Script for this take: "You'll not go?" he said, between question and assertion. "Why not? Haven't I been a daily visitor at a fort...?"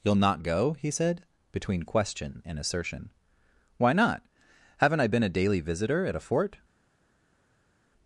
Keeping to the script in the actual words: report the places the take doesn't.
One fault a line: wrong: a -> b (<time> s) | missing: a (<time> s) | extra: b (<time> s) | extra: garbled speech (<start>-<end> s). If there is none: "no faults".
no faults